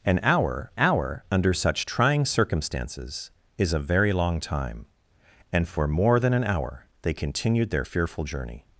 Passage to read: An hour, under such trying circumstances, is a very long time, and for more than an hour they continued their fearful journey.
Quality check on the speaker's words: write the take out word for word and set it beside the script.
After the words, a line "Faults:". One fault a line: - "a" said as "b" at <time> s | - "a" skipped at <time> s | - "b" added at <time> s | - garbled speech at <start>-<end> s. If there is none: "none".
An hour hour, under such trying circumstances, is a very long time, and for more than an hour they continued their fearful journey.
Faults:
- "hour" added at 0.8 s